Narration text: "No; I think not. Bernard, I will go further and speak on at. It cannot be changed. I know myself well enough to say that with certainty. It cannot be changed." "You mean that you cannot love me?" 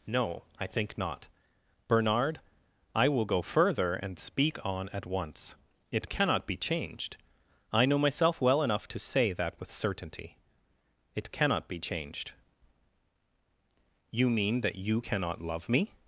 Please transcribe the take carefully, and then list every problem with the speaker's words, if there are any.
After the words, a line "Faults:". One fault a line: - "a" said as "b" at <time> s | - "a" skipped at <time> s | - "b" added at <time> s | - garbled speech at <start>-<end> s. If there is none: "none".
"No; I think not. Bernard, I will go further and speak on at once. It cannot be changed. I know myself well enough to say that with certainty. It cannot be changed." "You mean that you cannot love me?"
Faults:
- "once" added at 5.0 s